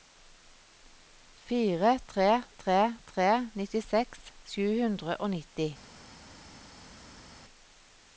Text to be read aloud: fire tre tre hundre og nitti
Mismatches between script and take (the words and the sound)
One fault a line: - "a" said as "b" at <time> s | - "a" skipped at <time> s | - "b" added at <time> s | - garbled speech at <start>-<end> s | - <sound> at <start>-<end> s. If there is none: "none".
- "tre nittiseks sju" added at 3.1 s